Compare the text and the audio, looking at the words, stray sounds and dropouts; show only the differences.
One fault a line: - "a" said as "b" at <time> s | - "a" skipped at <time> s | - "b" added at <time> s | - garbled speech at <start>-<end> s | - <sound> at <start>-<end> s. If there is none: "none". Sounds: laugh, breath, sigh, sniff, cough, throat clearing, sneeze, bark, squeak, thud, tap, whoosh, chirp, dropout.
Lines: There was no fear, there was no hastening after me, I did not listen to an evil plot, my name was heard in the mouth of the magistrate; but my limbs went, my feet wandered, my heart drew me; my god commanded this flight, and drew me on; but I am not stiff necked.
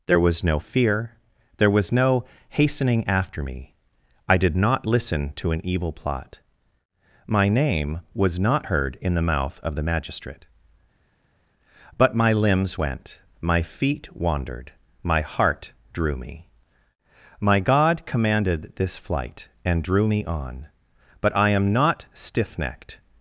- "not" added at 8.4 s